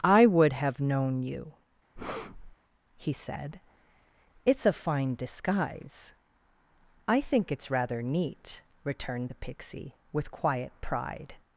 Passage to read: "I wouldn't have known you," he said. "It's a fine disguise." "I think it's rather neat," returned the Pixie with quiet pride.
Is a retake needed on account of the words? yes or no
yes